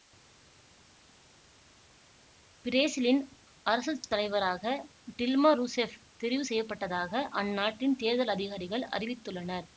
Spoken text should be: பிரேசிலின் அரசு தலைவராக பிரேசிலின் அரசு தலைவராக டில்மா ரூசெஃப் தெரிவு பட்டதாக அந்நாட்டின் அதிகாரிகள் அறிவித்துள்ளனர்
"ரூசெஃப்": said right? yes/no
yes